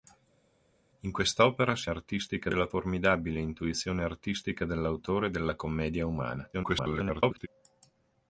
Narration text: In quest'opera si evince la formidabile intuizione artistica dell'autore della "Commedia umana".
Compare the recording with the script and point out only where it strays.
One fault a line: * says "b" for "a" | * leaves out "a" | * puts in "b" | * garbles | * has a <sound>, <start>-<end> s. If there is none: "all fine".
* says "artistica" for "evince"
* garbles